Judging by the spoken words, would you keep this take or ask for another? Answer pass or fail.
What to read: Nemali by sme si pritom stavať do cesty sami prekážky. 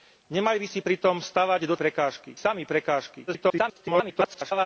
fail